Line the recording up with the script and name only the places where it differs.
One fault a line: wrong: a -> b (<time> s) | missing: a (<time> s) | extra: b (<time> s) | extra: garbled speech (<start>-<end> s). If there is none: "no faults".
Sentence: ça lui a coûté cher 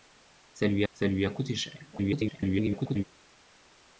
extra: ça lui (0.9 s)
extra: garbled speech (1.9-3.0 s)